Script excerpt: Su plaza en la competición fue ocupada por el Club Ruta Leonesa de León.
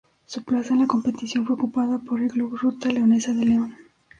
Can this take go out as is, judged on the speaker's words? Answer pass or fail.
pass